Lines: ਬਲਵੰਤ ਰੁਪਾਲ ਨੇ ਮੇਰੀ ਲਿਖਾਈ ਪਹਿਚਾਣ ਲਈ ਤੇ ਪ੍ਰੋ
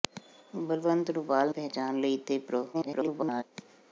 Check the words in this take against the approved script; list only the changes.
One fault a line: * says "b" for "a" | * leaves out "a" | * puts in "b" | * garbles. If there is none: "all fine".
* leaves out "ਨੇ ਮੇਰੀ ਲਿਖਾਈ"
* garbles